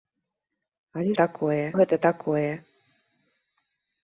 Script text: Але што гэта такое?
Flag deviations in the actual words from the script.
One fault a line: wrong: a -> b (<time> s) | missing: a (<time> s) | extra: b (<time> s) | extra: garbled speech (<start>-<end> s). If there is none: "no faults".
wrong: што -> такое (1.2 s)